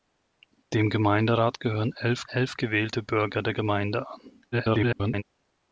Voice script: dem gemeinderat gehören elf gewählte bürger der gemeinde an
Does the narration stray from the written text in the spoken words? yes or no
yes